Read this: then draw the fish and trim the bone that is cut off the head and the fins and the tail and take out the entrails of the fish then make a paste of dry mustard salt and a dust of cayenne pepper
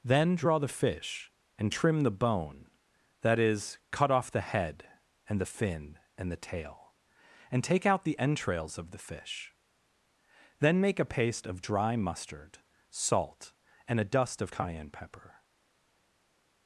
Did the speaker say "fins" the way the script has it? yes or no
no